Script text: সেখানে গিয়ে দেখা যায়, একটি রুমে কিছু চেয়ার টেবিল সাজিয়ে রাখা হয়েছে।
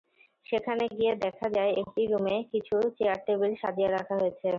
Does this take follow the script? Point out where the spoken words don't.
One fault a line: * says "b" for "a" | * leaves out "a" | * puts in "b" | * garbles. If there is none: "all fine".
all fine